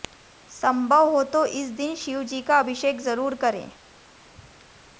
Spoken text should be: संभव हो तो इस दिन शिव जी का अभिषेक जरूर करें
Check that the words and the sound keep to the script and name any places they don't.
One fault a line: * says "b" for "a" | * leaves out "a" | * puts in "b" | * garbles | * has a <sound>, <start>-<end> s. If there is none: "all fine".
all fine